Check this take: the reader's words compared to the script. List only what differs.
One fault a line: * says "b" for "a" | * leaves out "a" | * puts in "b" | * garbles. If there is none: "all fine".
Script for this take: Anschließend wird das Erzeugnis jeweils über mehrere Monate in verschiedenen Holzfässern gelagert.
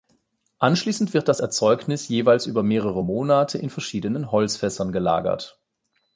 all fine